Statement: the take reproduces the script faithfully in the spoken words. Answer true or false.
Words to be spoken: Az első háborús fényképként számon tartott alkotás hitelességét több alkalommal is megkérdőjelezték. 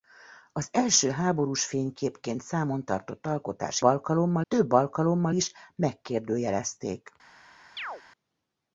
false